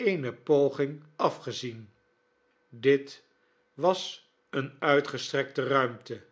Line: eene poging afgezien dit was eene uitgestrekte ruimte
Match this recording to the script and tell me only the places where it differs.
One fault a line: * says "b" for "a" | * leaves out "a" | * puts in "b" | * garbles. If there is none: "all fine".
all fine